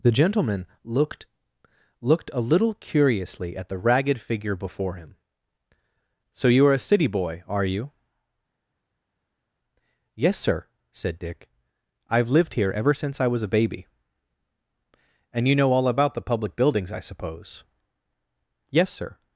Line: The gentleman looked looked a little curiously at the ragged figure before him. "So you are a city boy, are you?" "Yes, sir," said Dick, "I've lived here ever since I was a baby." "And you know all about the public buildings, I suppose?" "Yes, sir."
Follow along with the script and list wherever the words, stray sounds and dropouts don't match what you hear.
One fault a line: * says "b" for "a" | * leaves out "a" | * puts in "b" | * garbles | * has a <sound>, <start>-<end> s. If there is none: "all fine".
all fine